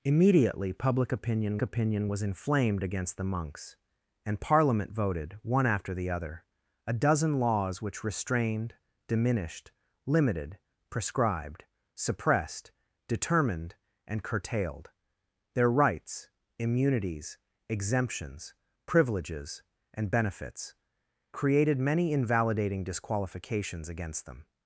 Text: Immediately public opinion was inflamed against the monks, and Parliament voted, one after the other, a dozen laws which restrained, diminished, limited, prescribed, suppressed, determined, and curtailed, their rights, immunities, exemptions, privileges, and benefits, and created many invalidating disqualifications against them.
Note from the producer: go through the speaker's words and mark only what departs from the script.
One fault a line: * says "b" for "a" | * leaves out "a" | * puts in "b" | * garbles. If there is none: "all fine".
* puts in "opinion"
* leaves out "and"